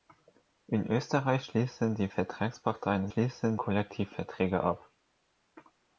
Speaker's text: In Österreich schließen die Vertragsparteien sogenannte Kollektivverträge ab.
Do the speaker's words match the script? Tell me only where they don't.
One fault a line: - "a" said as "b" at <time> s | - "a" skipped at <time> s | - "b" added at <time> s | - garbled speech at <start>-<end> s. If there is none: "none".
- "sogenannte" said as "schließen" at 3.1 s